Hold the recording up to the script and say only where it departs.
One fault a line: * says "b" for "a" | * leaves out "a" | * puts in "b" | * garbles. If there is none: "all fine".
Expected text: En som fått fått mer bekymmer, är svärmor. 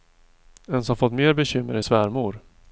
* leaves out "fått"